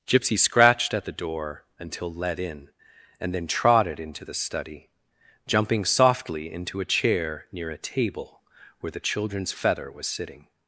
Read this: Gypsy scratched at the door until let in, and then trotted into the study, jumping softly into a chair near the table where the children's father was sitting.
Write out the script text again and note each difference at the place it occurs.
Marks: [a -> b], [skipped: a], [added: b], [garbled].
Gypsy scratched at the door until let in, and then trotted into the study, jumping softly into a chair near [the -> a] table where the children's [father -> feather] was sitting.